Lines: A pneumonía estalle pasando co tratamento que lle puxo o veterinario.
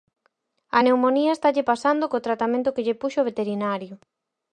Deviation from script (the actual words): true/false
false